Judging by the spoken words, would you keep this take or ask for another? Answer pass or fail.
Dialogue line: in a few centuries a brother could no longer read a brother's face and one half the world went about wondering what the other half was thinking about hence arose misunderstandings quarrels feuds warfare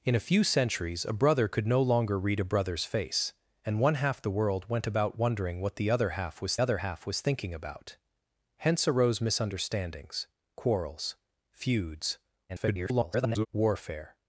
fail